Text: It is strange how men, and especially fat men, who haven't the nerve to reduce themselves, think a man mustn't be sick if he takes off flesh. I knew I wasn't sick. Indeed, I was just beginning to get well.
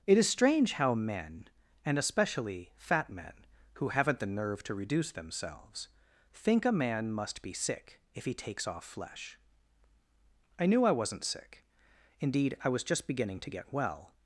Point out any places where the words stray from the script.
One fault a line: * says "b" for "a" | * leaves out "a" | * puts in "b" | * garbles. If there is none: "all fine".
* says "must" for "mustn't"